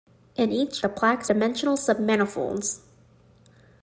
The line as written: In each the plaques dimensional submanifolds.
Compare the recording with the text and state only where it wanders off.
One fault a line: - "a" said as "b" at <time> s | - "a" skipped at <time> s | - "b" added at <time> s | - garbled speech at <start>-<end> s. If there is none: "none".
none